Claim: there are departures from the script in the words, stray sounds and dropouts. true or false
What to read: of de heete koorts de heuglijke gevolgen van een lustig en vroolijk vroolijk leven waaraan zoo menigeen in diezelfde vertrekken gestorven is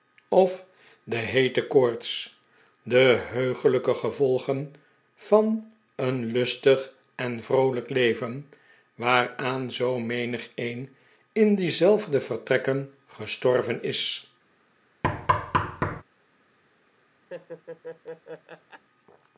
true